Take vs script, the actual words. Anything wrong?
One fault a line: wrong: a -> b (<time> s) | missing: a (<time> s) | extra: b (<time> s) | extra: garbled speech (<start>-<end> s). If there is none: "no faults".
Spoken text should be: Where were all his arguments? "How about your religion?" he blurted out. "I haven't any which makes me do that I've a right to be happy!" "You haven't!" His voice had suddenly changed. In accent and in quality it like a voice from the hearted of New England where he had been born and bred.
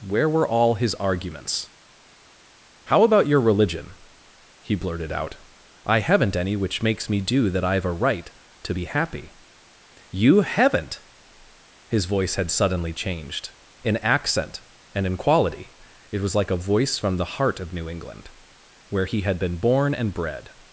extra: was (16.2 s)
wrong: hearted -> heart (17.3 s)